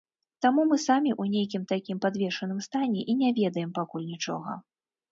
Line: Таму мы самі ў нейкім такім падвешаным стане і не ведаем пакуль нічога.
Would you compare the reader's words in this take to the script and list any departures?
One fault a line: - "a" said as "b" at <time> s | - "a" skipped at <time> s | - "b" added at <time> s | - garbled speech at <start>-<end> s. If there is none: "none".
none